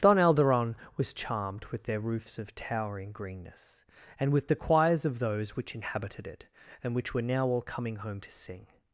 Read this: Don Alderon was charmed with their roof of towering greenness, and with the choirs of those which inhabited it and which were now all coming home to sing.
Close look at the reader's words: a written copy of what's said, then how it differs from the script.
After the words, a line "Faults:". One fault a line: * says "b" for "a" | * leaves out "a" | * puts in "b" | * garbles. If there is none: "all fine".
Don Alderon was charmed with their roofs of towering greenness, and with the choirs of those which inhabited it and which were now all coming home to sing.
Faults:
* says "roofs" for "roof"